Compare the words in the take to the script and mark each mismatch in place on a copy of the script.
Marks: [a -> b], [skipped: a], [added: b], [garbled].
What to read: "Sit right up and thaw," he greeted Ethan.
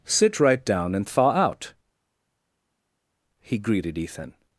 "Sit right [up -> down] and thaw," [added: out] he greeted Ethan.